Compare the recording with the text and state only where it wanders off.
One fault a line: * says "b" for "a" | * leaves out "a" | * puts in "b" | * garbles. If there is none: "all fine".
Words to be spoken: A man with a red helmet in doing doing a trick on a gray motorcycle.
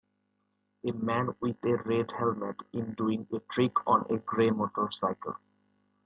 * leaves out "doing"